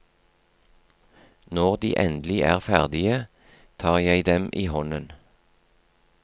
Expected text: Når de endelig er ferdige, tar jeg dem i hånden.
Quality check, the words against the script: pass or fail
pass